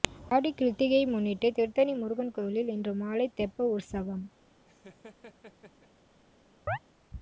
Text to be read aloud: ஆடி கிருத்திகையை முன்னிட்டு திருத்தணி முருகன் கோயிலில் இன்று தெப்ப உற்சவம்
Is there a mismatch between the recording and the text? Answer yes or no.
yes